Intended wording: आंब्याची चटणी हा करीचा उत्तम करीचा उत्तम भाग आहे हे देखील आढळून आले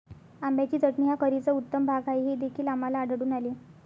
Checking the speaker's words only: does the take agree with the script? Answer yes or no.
no